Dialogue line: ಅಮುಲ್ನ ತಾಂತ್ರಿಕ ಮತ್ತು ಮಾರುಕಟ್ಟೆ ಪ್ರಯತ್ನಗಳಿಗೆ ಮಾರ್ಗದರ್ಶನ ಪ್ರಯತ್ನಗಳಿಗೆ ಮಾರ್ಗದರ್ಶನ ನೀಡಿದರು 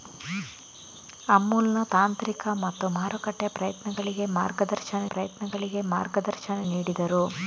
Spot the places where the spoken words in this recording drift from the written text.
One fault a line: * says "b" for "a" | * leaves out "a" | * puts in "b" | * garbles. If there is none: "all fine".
all fine